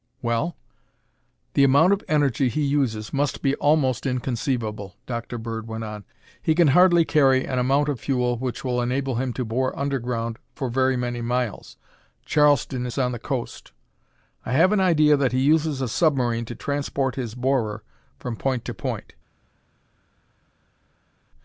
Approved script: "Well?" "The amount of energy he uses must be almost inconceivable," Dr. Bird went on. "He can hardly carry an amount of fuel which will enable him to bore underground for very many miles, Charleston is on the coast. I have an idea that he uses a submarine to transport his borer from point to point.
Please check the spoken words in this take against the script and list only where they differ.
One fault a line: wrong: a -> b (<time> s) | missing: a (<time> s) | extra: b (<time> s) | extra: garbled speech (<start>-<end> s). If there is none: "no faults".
no faults